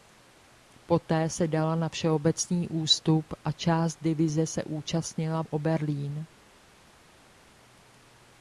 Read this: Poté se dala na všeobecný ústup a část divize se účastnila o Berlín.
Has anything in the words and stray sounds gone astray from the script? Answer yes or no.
no